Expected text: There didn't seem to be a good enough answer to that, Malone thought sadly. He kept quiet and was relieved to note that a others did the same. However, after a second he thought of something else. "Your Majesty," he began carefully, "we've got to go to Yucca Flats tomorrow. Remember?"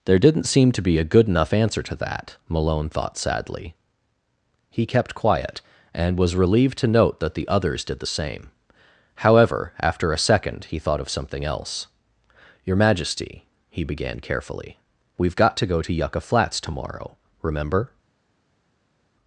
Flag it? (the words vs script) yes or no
yes